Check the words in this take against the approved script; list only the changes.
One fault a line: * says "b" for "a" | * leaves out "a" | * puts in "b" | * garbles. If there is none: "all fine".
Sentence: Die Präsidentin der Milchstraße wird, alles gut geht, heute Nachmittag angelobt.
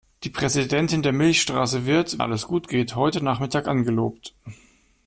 all fine